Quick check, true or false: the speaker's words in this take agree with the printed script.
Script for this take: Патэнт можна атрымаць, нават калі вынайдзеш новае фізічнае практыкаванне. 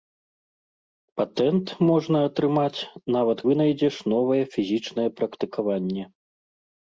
false